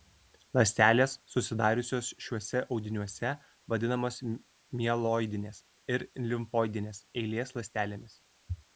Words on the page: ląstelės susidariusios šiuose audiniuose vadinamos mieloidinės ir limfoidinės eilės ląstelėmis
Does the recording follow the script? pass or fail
pass